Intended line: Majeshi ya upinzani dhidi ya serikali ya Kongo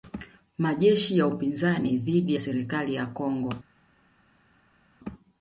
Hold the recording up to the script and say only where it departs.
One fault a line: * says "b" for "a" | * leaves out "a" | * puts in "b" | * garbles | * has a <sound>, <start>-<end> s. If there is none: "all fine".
all fine